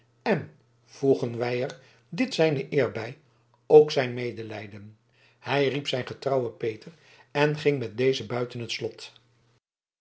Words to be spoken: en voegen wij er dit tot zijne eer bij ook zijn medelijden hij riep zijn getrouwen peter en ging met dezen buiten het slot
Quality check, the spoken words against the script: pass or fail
fail